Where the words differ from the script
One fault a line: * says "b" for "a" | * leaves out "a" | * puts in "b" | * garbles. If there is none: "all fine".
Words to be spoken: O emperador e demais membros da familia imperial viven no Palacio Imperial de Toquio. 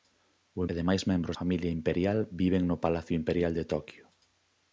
* leaves out "emperador"
* leaves out "da"